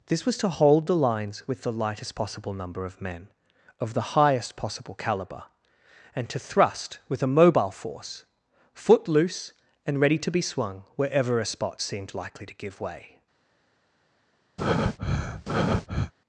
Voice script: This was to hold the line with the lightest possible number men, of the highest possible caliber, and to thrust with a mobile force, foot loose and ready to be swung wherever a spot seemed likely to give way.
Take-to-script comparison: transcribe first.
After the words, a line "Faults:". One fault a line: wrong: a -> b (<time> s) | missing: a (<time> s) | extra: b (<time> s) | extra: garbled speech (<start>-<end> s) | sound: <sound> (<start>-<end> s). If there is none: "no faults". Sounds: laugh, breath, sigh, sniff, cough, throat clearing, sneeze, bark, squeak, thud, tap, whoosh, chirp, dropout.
This was to hold the lines with the lightest possible number of men, of the highest possible caliber, and to thrust with a mobile force, foot loose and ready to be swung wherever a spot seemed likely to give way.
Faults:
wrong: line -> lines (0.9 s)
extra: of (2.9 s)
sound: breath (14.6-16.1 s)